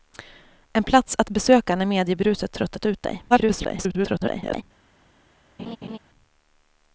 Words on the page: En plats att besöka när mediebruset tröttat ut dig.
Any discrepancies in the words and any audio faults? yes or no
yes